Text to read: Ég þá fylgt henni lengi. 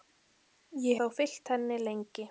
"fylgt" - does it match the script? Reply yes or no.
yes